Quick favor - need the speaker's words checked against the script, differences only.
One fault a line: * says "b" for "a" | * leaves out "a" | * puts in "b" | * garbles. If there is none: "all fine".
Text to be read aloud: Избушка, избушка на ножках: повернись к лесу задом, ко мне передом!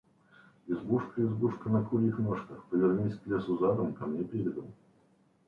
* puts in "курьих"